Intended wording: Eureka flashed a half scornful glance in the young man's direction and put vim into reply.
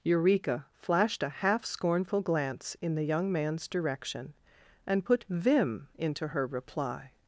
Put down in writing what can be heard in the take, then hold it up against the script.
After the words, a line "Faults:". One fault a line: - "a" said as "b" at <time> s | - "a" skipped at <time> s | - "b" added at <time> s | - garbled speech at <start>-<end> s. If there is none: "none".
Eureka flashed a half scornful glance in the young man's direction and put vim into her reply.
Faults:
- "her" added at 6.3 s